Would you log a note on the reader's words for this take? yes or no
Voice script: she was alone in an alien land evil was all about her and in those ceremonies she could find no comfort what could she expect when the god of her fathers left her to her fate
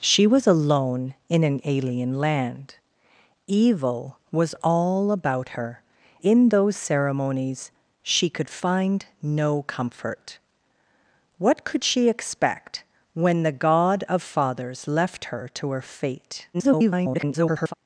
yes